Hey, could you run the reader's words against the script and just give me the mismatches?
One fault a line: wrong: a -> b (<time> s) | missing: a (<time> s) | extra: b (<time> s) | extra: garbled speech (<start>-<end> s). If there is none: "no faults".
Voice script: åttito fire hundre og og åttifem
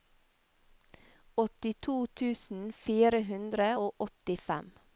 extra: tusen (2.2 s)
missing: og (4.1 s)